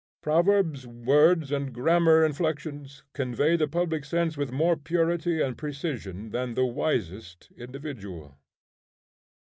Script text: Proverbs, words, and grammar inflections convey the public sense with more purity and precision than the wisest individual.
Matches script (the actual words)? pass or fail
pass